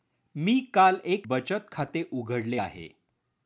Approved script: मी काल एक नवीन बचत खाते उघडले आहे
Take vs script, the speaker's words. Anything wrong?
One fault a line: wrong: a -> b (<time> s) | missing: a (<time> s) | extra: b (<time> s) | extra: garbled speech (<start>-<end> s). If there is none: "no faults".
missing: नवीन (1.3 s)